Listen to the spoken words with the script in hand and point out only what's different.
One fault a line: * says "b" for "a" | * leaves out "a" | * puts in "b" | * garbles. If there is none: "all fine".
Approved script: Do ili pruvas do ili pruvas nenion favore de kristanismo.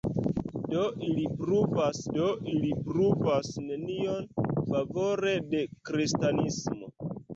all fine